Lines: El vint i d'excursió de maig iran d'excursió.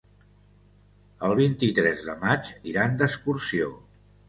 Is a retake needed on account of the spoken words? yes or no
yes